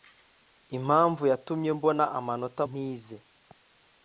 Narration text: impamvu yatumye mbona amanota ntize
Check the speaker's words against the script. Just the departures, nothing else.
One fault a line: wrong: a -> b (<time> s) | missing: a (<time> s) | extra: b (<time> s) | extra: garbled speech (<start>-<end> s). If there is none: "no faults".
no faults